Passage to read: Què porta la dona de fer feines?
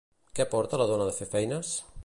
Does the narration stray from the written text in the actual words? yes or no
no